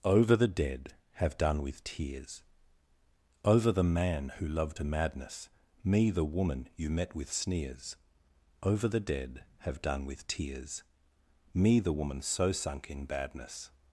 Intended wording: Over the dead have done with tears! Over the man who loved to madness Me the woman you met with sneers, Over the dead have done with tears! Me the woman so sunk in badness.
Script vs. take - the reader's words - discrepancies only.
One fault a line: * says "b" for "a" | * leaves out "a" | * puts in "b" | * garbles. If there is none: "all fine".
all fine